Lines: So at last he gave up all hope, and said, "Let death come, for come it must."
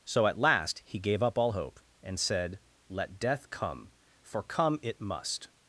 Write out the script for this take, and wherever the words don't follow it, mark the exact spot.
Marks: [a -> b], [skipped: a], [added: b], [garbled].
So at last he gave up all hope, and said, "Let death come, for come it must."